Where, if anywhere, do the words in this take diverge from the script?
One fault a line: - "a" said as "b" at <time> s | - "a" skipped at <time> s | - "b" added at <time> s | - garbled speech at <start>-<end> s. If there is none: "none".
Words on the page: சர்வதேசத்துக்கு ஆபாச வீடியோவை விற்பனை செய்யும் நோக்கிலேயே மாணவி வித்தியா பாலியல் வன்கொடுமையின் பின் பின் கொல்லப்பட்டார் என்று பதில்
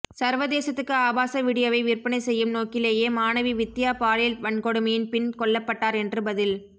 - "பின்" skipped at 5.3 s